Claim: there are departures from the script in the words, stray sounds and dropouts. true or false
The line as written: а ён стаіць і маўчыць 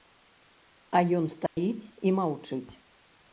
true